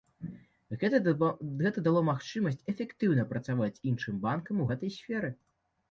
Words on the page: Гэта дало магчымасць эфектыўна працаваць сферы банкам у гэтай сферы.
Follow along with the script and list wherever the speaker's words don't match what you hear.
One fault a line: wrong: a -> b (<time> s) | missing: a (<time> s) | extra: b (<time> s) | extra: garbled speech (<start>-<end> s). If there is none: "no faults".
wrong: сферы -> іншым (3.9 s)